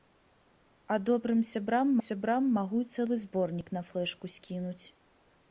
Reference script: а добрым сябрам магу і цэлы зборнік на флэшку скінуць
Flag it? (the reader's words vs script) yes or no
yes